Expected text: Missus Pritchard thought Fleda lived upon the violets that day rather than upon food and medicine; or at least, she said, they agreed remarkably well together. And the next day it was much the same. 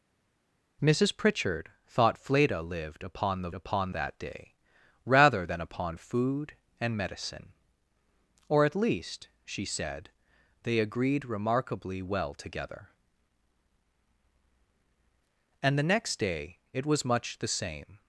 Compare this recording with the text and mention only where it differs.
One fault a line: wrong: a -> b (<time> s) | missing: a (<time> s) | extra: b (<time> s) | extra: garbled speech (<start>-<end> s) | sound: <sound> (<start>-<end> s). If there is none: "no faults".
wrong: violets -> upon (3.5 s)